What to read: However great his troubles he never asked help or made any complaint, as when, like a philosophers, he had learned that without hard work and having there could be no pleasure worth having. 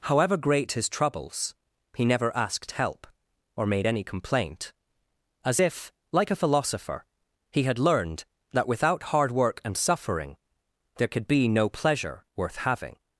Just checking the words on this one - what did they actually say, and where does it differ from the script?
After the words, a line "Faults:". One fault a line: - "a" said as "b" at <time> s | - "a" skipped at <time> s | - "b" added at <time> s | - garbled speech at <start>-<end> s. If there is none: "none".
However great his troubles he never asked help or made any complaint, as if, like a philosopher, he had learned that without hard work and suffering there could be no pleasure worth having.
Faults:
- "when" said as "if" at 5.6 s
- "philosophers" said as "philosopher" at 6.4 s
- "having" said as "suffering" at 9.8 s